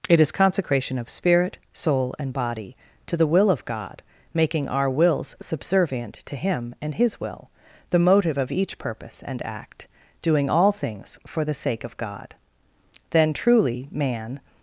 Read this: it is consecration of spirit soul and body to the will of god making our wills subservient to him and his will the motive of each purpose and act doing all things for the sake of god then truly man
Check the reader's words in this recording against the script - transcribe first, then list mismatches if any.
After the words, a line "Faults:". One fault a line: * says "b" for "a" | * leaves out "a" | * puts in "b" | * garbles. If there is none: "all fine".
it is consecration of spirit soul and body to the will of god making our wills subservient to him and his will the motive of each purpose and act doing all things for the sake of god then truly man
Faults:
all fine